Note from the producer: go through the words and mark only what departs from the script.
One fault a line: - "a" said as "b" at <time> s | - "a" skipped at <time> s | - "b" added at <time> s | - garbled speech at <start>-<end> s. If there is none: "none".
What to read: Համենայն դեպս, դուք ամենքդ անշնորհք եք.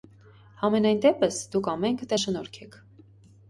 none